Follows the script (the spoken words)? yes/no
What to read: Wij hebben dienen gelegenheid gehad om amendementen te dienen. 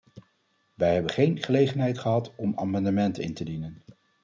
no